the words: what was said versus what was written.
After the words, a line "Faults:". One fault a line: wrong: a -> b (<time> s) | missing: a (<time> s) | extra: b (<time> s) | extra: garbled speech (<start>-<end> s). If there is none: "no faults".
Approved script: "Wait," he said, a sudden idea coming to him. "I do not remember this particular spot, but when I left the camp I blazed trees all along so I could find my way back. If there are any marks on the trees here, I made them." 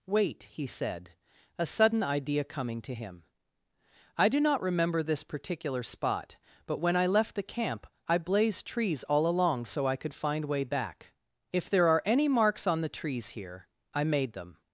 "Wait," he said, a sudden idea coming to him. "I do not remember this particular spot, but when I left the camp I blazed trees all along so I could find way back. If there are any marks on the trees here, I made them."
Faults:
missing: my (10.5 s)